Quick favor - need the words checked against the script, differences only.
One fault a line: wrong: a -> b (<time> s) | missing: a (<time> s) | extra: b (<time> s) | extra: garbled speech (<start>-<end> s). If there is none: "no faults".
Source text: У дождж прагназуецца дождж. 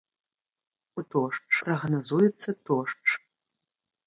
no faults